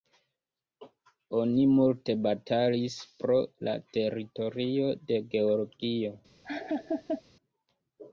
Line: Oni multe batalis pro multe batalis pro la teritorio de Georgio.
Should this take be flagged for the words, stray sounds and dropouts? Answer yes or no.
yes